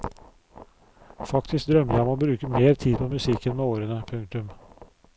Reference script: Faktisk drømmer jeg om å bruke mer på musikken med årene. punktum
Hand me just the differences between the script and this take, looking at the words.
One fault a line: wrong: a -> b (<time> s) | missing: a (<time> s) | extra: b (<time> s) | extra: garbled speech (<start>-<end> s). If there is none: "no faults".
extra: tid (2.8 s)